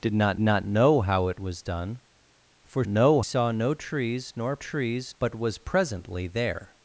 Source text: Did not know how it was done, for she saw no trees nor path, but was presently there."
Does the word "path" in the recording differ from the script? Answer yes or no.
yes